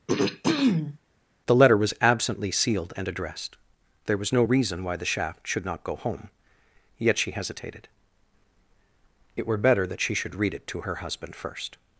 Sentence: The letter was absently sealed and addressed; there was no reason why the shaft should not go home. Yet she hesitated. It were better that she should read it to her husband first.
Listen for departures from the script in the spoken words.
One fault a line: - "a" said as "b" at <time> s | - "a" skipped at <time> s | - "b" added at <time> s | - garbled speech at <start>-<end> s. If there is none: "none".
none